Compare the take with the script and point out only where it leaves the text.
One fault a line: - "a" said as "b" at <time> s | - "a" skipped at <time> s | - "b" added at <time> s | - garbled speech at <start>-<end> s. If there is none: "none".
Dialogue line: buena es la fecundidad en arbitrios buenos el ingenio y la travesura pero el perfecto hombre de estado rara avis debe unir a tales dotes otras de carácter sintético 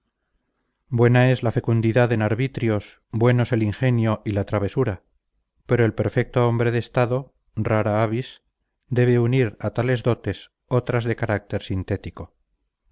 none